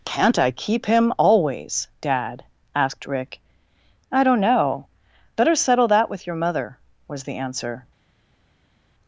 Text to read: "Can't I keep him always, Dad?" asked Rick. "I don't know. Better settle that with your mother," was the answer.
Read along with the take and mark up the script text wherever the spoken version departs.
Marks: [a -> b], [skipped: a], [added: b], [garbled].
"Can't I keep him always, Dad?" asked Rick. "I don't know. Better settle that with your mother," was the answer.